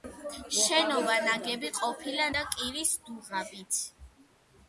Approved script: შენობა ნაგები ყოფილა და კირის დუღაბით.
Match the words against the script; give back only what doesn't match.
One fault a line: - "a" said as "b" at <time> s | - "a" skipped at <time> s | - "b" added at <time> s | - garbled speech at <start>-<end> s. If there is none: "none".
none